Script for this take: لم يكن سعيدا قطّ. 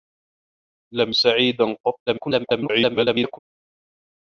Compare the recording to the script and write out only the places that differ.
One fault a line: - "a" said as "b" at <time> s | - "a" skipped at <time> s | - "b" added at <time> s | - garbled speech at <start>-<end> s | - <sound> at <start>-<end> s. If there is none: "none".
- "يكن" skipped at 1.1 s
- garbled speech at 2.1-3.4 s